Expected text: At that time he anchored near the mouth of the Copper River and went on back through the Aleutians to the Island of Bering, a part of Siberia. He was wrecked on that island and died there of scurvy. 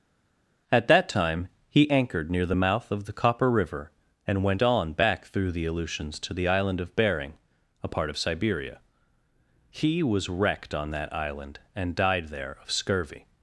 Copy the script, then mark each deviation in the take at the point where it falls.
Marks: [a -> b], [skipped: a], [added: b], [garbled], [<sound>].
At that time he anchored near the mouth of the Copper River and went on back through the Aleutians to the Island of Bering, a part of Siberia. He was wrecked on that island and died there of scurvy.